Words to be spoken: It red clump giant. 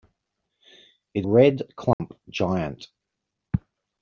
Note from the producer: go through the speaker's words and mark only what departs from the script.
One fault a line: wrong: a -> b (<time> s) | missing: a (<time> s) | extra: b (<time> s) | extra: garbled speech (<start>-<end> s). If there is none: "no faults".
no faults